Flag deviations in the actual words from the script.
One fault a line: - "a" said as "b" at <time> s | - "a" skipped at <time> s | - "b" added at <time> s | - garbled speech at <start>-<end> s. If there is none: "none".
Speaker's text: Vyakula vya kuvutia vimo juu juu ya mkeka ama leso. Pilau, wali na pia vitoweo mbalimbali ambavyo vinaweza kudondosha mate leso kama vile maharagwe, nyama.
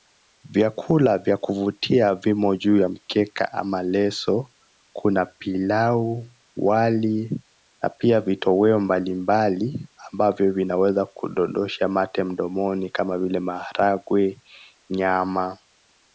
- "juu" skipped at 2.8 s
- "Kuna" added at 4.9 s
- "leso" said as "mdomoni" at 12.2 s